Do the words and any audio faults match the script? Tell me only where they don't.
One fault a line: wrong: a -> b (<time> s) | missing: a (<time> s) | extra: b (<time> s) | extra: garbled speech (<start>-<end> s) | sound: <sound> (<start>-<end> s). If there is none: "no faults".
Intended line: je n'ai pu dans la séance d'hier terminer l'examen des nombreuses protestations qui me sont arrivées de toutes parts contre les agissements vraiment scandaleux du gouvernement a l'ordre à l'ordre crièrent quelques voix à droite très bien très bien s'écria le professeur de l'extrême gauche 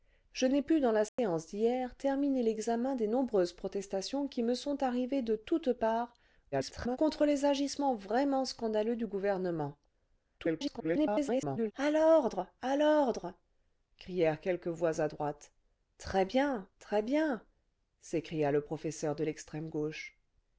sound: dropout (1.1-1.2 s)
extra: garbled speech (6.5-7.0 s)
extra: garbled speech (10.4-11.7 s)